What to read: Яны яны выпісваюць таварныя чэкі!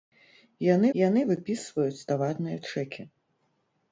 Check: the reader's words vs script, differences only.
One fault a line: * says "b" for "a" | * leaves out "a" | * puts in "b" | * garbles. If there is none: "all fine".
all fine